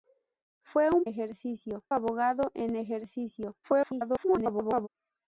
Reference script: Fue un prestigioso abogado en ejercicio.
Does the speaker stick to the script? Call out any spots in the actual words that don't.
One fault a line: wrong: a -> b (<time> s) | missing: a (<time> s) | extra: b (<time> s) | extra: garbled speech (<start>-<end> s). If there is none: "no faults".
wrong: prestigioso -> ejercicio (1.0 s)
extra: garbled speech (3.6-4.9 s)